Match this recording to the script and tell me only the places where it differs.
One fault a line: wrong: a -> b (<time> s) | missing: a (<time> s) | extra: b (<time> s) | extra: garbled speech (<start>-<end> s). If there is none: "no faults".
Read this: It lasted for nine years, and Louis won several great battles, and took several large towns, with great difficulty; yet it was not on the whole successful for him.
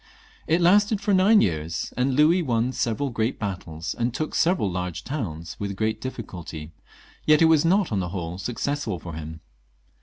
no faults